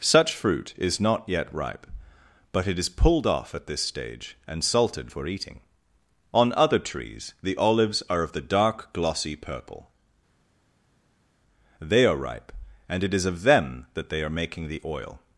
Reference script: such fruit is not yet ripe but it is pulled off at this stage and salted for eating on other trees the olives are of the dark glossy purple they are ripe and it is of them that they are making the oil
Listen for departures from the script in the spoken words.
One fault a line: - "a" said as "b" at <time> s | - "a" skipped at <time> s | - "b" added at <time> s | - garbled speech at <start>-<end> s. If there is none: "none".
none